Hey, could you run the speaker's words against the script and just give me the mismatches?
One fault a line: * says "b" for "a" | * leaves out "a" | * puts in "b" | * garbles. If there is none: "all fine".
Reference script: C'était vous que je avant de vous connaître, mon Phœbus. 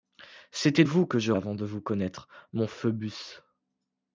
all fine